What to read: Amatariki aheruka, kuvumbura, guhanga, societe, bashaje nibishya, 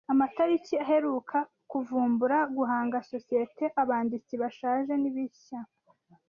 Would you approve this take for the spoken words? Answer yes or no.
no